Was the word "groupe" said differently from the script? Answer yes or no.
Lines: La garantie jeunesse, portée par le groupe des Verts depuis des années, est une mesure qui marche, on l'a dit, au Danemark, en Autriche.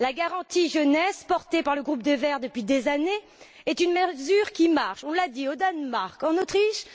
no